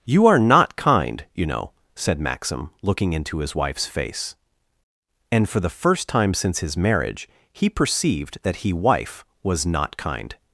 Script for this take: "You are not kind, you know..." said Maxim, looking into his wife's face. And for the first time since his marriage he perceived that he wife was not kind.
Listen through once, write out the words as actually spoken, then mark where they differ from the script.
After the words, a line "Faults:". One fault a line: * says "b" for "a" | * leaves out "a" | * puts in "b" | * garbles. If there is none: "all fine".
"You are not kind, you know..." said Maxim, looking into his wife's face. And for the first time since his marriage he perceived that he wife was not kind.
Faults:
all fine